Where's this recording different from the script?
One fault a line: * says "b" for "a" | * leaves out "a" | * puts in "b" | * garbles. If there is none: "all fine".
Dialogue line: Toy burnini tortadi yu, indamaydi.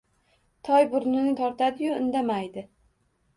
all fine